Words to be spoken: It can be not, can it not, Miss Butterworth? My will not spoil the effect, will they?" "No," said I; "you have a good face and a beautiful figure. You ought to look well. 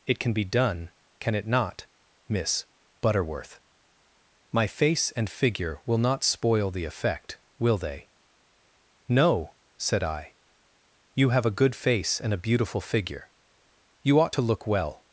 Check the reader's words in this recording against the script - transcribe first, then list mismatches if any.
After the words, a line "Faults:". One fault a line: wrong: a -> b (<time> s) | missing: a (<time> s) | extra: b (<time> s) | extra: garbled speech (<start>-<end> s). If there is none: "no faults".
It can be done, can it not, Miss Butterworth? My face and figure will not spoil the effect, will they?" "No," said I; "you have a good face and a beautiful figure. You ought to look well.
Faults:
wrong: not -> done (0.4 s)
extra: face and figure (4.7 s)